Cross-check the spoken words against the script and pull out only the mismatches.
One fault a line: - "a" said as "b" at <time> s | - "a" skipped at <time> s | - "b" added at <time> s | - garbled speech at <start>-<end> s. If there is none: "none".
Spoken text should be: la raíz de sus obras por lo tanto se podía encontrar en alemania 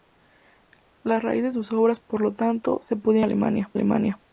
none